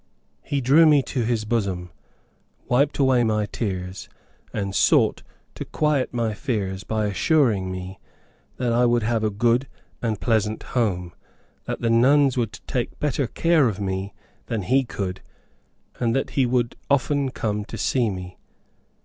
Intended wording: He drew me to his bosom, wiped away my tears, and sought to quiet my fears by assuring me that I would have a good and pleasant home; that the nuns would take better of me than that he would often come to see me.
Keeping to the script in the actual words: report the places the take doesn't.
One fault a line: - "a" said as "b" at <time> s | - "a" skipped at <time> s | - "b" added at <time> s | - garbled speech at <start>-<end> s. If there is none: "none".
- "care" added at 13.3 s
- "he could and" added at 14.6 s